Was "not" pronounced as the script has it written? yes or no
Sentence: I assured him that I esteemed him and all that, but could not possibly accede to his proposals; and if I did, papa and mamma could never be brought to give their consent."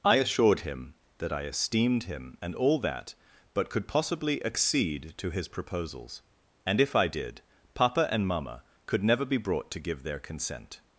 no